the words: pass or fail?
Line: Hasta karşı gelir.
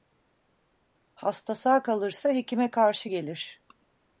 fail